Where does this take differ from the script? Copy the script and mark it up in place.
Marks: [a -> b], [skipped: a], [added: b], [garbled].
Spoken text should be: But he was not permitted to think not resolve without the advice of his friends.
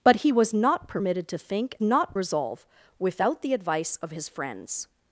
But he was not permitted to think not resolve without the advice of his friends.